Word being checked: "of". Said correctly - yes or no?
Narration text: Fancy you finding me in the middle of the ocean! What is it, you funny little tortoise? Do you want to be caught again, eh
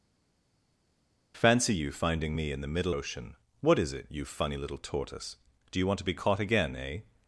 no